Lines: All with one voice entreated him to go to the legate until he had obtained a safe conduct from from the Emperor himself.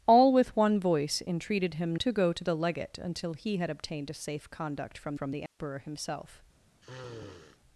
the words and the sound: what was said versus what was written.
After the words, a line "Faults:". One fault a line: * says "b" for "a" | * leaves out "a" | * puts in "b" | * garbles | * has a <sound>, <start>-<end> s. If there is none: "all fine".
All with one voice entreated him to go to the legate until he had obtained a safe conduct from from the Emperor himself.
Faults:
* has a dropout, 5.5-5.6 s
* has a sniff, 6.8-7.6 s